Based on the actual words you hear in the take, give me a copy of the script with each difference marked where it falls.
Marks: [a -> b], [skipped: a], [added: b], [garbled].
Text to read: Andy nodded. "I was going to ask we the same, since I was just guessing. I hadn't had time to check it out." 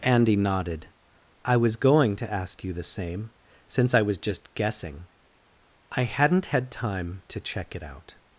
Andy nodded. "I was going to ask [we -> you] the same, since I was just guessing. I hadn't had time to check it out."